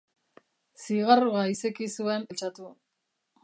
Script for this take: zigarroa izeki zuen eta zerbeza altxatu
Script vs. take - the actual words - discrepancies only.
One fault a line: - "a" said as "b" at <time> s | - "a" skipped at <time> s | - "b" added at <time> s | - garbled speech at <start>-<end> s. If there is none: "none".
- "eta zerbeza" skipped at 2.3 s